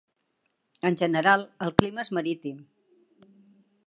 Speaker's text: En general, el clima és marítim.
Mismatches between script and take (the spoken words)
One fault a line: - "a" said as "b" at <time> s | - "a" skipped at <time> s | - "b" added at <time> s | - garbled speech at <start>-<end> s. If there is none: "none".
none